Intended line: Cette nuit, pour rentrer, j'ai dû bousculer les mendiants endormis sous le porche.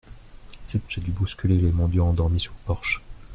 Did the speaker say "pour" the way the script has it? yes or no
no